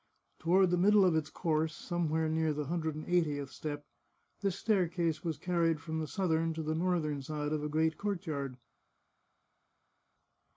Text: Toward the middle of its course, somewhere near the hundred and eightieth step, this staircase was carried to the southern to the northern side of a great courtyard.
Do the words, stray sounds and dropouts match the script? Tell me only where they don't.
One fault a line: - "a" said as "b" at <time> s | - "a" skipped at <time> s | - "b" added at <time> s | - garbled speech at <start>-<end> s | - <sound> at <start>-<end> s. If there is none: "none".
- "to" said as "from" at 5.8 s